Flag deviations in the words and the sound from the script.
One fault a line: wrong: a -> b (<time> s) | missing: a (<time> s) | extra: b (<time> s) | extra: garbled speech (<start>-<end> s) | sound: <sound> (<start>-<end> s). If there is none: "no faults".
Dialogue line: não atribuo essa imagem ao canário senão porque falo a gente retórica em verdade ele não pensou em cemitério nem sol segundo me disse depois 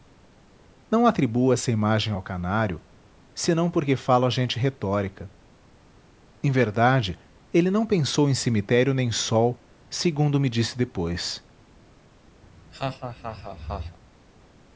sound: laugh (12.4-14.0 s)